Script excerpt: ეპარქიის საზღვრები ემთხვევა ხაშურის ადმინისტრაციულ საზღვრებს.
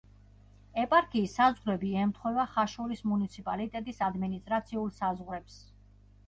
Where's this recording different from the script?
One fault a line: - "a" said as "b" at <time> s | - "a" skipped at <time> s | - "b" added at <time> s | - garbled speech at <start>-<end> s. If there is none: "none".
- "მუნიციპალიტეტის" added at 3.1 s